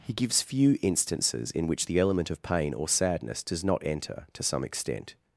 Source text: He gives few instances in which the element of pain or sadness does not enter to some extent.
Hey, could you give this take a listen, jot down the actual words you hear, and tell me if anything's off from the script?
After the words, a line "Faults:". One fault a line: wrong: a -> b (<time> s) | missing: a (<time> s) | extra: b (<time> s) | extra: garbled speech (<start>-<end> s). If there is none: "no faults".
He gives few instances in which the element of pain or sadness does not enter to some extent.
Faults:
no faults